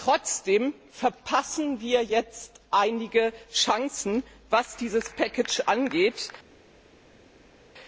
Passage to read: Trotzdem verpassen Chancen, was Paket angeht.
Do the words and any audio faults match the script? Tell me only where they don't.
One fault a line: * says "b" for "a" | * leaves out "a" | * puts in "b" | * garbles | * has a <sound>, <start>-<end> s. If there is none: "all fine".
* puts in "wir jetzt einige"
* puts in "dieses"